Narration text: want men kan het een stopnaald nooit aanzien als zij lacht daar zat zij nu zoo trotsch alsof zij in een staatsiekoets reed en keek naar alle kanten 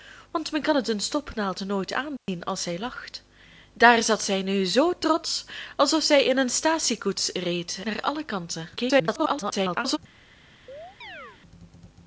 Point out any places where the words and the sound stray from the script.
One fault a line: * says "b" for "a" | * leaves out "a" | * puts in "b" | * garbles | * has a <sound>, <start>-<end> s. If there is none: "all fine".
* has a dropout, 2.2-2.3 s
* leaves out "en keek"
* garbles
* has a chirp, 10.7-11.4 s